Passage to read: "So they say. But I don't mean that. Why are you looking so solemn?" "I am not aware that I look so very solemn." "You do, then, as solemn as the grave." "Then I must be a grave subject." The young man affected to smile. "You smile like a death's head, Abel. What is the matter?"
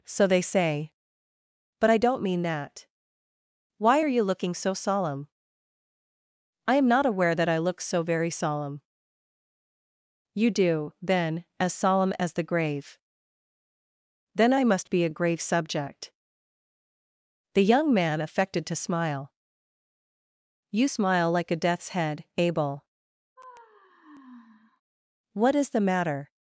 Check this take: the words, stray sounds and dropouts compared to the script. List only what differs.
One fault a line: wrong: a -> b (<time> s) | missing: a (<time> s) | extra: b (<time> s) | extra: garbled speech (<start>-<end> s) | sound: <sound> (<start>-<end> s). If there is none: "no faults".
sound: sigh (23.4-24.8 s)